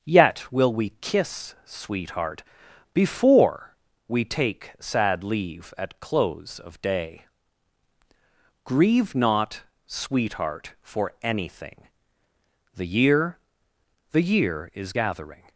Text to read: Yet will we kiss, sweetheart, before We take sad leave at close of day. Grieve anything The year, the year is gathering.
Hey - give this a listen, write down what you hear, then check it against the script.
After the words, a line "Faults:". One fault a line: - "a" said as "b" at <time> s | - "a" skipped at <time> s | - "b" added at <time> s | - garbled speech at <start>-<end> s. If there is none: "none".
Yet will we kiss, sweetheart, before We take sad leave at close of day. Grieve not, sweetheart, for anything The year, the year is gathering.
Faults:
- "not sweetheart for" added at 9.2 s